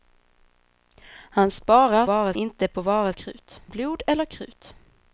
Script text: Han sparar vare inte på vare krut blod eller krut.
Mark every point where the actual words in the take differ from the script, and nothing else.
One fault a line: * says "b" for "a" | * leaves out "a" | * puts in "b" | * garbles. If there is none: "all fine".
all fine